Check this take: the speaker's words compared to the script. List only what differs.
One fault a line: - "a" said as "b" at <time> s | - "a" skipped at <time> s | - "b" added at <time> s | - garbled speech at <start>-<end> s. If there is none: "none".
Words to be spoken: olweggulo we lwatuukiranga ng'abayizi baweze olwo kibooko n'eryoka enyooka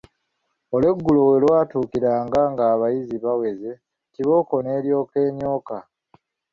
- "olwo" skipped at 3.7 s